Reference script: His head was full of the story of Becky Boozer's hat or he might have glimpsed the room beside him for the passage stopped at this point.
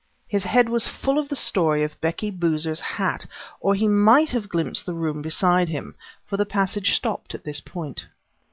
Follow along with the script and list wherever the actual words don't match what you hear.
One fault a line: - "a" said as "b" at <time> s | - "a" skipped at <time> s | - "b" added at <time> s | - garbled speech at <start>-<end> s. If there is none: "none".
none